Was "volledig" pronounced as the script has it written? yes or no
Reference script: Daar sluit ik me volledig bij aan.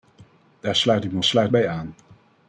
no